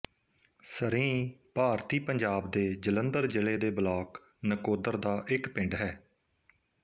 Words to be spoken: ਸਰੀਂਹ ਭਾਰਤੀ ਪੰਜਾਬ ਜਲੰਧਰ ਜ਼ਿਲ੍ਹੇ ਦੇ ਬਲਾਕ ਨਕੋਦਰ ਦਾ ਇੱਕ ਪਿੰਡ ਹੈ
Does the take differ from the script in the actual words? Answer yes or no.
yes